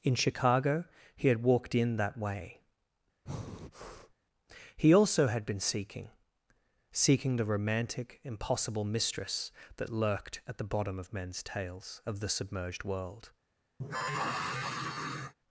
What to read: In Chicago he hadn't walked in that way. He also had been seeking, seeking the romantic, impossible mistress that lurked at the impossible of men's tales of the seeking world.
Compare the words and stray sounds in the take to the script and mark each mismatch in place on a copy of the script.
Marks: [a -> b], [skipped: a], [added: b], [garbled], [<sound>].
In Chicago he [hadn't -> had] walked in that way. [breath] He also had been seeking, seeking the romantic, impossible mistress that lurked at the [impossible -> bottom] of men's tales of the [seeking -> submerged] world. [sigh]